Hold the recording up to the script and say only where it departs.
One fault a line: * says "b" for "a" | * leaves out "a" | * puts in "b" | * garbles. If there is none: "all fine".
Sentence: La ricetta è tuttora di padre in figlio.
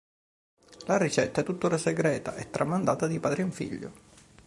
* puts in "segreta e tramandata"